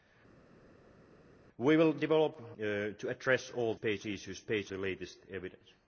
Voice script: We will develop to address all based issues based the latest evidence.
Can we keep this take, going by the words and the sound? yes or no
yes